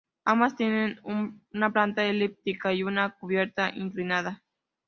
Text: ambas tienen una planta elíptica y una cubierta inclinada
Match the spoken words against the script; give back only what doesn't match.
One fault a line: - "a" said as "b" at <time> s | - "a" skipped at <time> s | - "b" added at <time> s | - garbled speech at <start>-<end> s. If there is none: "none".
none